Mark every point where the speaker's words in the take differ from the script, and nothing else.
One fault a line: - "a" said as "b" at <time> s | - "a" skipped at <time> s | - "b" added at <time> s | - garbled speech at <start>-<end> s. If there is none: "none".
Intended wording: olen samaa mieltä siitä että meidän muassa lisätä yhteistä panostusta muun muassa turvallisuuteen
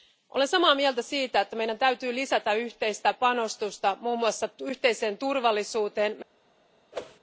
- "muassa" said as "täytyy" at 1.8 s
- "yhteiseen" added at 4.6 s